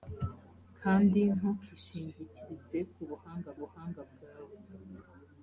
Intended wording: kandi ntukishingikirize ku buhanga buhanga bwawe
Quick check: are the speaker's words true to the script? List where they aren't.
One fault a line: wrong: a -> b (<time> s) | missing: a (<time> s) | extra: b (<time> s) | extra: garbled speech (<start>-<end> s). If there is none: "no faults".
no faults